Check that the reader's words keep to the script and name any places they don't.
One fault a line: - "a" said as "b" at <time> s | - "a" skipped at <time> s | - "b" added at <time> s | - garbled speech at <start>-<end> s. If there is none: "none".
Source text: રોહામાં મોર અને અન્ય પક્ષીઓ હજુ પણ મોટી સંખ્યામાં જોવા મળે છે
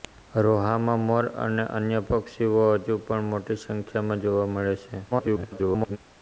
- garbled speech at 5.1-6.0 s